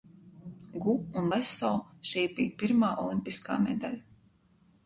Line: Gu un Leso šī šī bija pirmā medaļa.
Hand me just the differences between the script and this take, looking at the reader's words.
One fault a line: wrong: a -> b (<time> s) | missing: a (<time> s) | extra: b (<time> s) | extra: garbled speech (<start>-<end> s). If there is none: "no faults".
missing: šī (2.2 s)
extra: olimpiskā (3.1 s)